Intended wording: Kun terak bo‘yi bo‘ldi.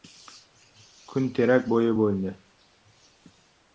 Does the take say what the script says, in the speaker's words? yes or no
yes